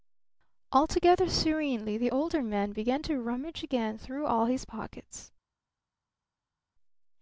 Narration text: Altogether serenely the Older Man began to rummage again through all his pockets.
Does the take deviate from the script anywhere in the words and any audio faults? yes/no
no